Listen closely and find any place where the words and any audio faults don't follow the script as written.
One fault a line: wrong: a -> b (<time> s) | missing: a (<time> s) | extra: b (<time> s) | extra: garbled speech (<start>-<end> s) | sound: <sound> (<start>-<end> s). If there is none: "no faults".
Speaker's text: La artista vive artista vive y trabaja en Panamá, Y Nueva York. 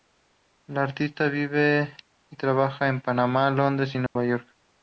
missing: artista vive (1.9 s)
extra: Londres (3.5 s)
sound: dropout (4.1-4.2 s)